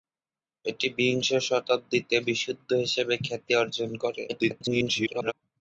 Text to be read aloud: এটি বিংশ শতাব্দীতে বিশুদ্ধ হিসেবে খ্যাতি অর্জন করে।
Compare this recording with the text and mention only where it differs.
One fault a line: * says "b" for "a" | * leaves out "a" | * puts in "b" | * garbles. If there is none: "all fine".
* garbles